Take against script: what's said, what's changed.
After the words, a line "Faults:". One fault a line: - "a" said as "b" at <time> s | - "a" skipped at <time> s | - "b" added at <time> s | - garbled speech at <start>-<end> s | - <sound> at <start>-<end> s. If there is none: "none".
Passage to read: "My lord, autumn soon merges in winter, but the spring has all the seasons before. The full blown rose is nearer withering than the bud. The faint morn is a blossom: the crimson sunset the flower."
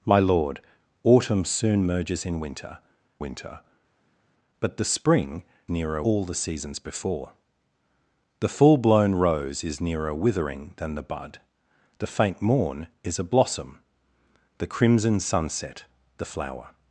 "My lord, autumn soon merges in winter winter, but the spring nearer all the seasons before. The full blown rose is nearer withering than the bud. The faint morn is a blossom: the crimson sunset the flower."
Faults:
- "winter" added at 3.2 s
- "has" said as "nearer" at 5.7 s